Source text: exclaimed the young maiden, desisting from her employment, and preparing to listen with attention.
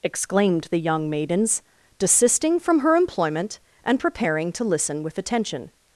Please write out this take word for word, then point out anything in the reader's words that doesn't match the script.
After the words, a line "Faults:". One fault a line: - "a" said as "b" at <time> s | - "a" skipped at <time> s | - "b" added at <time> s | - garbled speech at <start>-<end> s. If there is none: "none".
exclaimed the young maidens, desisting from her employment, and preparing to listen with attention.
Faults:
- "maiden" said as "maidens" at 1.1 s